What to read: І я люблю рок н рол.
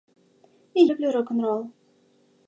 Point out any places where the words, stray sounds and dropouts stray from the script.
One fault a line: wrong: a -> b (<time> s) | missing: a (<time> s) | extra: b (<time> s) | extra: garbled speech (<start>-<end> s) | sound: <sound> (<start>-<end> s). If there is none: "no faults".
missing: я (0.8 s)